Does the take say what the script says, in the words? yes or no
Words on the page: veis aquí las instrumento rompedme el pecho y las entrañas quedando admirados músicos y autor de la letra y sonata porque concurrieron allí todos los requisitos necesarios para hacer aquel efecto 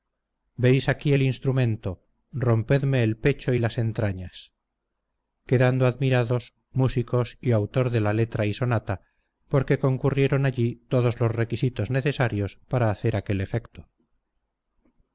no